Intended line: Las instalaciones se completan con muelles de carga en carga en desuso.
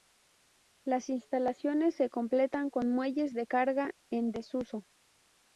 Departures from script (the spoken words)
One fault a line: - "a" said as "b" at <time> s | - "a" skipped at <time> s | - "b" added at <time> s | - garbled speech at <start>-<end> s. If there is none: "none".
- "carga en" skipped at 4.3 s